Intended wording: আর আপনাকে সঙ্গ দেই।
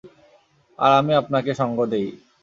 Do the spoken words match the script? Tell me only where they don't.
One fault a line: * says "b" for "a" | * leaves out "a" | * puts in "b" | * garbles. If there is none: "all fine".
* puts in "আমি"